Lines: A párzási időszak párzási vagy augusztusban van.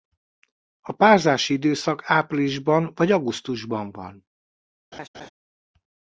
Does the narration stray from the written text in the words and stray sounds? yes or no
yes